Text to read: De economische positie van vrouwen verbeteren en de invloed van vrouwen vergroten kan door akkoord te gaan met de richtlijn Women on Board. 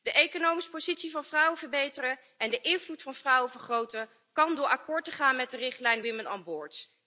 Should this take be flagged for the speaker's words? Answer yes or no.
no